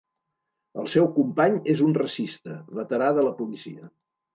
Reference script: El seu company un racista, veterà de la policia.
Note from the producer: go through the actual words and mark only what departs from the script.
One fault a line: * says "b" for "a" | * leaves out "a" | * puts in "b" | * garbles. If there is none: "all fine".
* puts in "és"